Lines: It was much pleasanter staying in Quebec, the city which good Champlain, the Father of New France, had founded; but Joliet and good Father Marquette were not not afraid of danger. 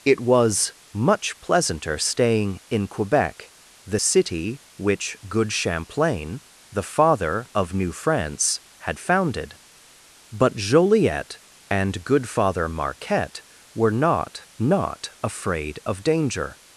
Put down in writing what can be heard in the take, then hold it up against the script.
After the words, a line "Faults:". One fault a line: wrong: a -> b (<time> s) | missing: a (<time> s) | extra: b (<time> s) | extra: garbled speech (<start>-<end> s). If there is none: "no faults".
It was much pleasanter staying in Quebec, the city which good Champlain, the Father of New France, had founded; but Joliet and good Father Marquette were not not afraid of danger.
Faults:
no faults